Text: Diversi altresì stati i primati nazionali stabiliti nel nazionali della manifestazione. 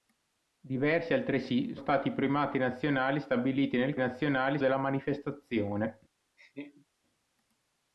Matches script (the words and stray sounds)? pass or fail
fail